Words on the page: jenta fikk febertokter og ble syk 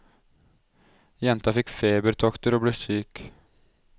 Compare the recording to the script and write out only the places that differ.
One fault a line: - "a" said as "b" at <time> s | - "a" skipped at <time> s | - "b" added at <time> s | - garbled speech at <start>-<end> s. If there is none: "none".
none